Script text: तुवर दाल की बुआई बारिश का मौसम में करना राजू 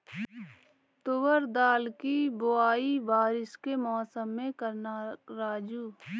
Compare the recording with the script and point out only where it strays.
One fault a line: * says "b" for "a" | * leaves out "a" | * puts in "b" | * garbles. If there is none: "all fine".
* says "के" for "का"